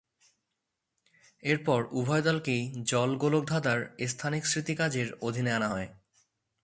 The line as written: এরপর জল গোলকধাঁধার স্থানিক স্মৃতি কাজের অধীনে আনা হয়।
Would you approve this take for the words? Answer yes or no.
no